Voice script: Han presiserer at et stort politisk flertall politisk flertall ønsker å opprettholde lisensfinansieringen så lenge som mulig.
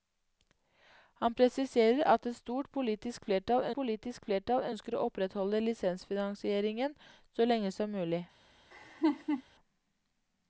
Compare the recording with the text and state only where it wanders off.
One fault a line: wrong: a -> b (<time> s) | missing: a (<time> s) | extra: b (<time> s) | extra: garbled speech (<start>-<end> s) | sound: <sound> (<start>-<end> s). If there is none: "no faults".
sound: laugh (8.7-9.4 s)